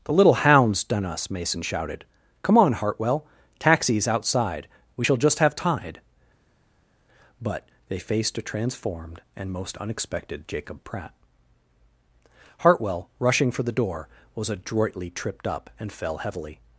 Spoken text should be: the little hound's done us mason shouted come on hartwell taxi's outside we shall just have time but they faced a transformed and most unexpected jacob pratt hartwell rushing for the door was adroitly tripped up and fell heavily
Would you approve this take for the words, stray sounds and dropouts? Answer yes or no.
no